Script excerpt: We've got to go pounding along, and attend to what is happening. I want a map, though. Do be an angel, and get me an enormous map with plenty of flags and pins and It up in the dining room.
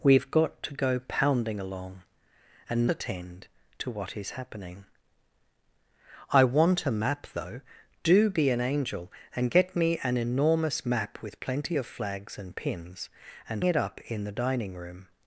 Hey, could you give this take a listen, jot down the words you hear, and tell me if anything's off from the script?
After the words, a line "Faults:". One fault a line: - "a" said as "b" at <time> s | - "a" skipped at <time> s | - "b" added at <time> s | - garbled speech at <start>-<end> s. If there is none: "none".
We've got to go pounding along, and attend to what is happening. I want a map, though. Do be an angel, and get me an enormous map with plenty of flags and pins and It up in the dining room.
Faults:
none